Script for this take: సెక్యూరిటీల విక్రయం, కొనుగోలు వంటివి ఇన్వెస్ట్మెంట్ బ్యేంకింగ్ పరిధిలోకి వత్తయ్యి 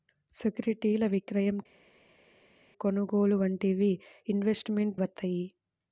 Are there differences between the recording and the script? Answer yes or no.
yes